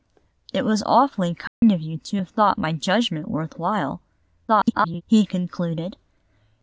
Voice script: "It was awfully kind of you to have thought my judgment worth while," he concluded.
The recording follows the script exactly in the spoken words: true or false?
false